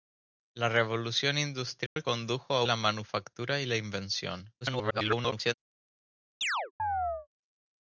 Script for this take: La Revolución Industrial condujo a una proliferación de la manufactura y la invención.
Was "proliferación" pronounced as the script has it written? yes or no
no